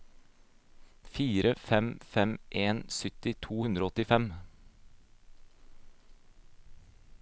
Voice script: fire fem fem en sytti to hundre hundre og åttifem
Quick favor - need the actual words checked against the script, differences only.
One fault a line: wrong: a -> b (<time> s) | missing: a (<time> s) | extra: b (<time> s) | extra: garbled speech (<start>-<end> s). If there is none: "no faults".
missing: hundre (3.9 s)